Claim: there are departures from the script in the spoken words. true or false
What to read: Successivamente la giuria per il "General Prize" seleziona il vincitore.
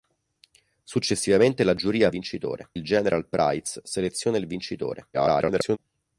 true